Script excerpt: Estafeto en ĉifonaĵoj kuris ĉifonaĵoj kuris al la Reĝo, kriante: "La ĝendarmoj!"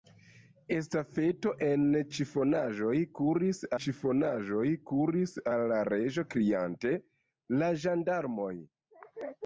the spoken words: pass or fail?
pass